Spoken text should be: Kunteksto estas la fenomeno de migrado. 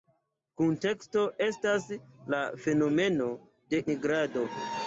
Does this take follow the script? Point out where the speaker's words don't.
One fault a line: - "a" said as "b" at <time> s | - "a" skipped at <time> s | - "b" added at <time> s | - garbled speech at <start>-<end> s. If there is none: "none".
none